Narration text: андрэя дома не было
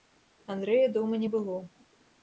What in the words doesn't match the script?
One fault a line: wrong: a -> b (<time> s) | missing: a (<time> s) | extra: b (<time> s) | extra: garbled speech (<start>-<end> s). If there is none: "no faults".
no faults